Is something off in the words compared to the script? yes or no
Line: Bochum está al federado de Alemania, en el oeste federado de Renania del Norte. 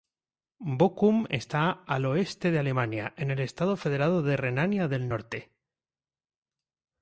yes